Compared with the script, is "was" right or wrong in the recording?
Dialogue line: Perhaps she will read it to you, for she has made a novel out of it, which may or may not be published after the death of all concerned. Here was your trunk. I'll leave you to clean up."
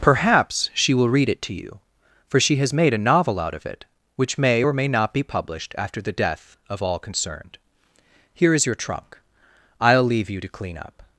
wrong